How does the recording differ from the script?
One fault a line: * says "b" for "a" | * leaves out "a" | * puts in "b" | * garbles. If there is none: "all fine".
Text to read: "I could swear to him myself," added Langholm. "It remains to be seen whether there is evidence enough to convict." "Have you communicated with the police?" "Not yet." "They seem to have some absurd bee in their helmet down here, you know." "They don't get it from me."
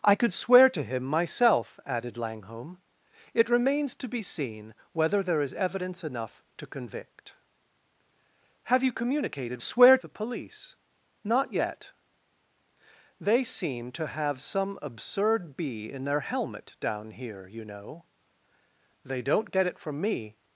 * says "swear" for "with"